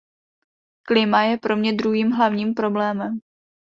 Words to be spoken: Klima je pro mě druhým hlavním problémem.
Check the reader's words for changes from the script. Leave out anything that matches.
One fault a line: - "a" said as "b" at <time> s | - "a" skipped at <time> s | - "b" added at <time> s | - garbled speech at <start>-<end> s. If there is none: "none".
none